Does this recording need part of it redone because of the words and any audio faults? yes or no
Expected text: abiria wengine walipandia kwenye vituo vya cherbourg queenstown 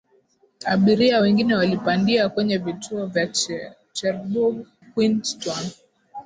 no